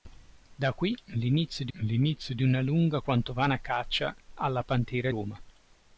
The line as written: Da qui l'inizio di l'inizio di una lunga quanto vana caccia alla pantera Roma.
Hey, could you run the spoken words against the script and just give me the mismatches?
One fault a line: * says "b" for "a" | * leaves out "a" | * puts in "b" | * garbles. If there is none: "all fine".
all fine